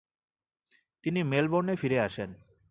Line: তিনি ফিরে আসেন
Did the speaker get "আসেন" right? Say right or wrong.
right